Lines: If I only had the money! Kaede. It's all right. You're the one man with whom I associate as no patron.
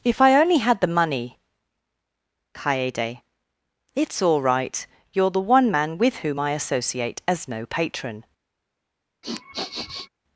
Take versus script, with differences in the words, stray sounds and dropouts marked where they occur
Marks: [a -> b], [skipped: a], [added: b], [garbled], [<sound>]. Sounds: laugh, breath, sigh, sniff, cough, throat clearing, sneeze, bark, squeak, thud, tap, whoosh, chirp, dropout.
If I only had the money! Kaede. It's all right. You're the one man with whom I associate as no patron. [sniff]